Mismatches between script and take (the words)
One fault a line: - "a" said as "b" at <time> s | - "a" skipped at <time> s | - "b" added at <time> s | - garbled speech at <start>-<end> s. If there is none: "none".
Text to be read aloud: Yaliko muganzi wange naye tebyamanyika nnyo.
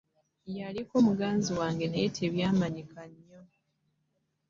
none